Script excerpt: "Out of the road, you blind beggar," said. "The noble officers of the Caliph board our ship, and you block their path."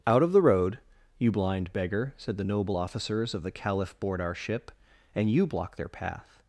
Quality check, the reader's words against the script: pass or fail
pass